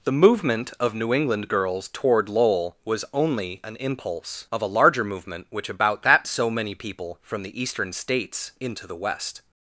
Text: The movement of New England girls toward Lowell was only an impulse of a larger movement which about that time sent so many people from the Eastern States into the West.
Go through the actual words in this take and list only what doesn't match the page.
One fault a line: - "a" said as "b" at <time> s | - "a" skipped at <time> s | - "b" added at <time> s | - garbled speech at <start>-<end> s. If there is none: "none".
- "time sent" skipped at 6.2 s